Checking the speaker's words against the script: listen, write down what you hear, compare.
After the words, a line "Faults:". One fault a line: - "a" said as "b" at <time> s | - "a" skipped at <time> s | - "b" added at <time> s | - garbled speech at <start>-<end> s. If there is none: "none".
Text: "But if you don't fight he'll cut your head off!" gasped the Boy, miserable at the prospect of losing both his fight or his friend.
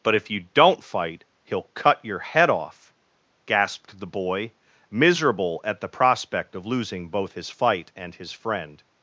"But if you don't fight he'll cut your head off!" gasped the Boy, miserable at the prospect of losing both his fight and his friend.
Faults:
- "or" said as "and" at 8.0 s